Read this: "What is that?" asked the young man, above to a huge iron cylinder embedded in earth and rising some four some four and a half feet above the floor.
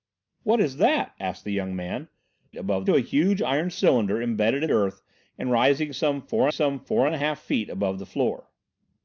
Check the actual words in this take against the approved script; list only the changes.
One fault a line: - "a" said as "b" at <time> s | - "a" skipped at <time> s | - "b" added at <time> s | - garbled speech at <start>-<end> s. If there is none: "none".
none